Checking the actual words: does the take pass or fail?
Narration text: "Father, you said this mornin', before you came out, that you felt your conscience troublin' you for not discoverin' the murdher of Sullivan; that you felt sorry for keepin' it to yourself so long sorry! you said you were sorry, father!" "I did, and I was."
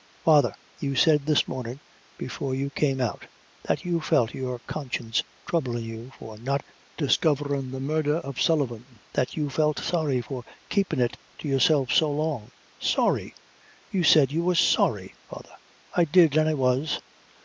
pass